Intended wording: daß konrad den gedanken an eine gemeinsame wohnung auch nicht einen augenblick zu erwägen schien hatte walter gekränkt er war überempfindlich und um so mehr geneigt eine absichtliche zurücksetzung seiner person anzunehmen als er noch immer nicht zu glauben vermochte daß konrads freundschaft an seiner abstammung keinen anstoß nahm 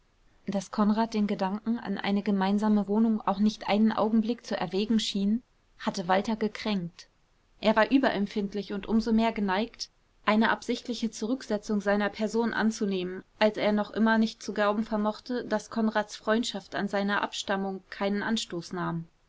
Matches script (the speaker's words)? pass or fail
pass